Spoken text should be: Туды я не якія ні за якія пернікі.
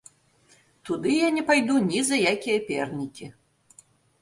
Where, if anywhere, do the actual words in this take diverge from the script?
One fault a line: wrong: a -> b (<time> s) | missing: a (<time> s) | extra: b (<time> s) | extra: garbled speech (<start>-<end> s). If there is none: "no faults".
wrong: якія -> пайду (1.5 s)